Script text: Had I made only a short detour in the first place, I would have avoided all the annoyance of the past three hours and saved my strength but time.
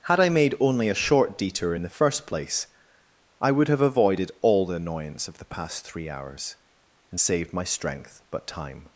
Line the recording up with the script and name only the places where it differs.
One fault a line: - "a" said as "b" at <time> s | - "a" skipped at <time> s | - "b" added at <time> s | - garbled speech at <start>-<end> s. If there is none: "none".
none